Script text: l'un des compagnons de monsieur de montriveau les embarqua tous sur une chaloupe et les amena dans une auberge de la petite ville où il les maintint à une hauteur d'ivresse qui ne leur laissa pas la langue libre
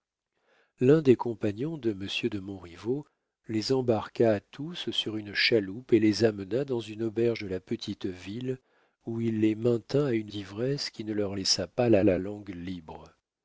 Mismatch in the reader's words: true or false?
true